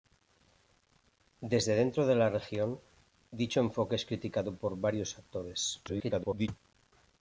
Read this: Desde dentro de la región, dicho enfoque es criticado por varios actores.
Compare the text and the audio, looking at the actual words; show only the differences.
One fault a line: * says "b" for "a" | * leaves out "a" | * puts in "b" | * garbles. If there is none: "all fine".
* garbles